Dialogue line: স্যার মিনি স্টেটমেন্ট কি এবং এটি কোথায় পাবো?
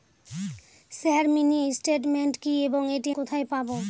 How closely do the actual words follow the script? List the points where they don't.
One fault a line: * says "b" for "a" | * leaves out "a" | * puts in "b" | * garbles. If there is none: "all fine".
all fine